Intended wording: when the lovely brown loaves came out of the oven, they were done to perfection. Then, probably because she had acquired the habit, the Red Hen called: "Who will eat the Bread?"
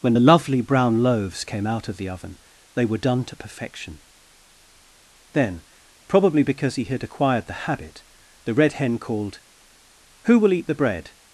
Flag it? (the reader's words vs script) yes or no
yes